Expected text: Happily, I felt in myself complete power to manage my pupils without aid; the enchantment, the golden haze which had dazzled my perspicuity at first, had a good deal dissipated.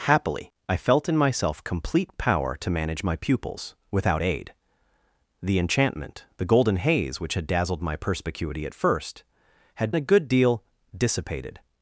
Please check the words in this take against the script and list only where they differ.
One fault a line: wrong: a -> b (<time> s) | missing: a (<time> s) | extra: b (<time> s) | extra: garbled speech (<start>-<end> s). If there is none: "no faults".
no faults